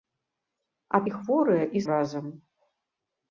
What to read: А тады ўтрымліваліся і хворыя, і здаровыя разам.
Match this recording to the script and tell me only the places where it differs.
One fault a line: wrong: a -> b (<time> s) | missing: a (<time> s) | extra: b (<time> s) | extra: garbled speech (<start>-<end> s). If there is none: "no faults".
missing: тады ўтрымліваліся (1.0 s)
missing: здаровыя (1.8 s)